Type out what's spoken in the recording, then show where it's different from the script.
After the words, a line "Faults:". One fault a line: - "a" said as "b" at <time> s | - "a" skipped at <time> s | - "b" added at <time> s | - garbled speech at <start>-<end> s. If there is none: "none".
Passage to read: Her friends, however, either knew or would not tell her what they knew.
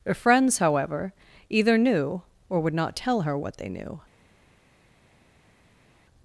Her friends, however, either knew or would not tell her what they knew.
Faults:
none